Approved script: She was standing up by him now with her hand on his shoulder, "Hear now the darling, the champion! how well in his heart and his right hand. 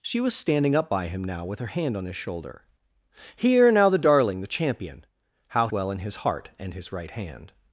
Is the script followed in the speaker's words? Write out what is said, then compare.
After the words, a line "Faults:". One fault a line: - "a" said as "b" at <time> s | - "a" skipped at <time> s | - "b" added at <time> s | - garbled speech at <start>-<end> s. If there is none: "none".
She was standing up by him now with her hand on his shoulder, "Hear now the darling, the champion! how well in his heart and his right hand.
Faults:
none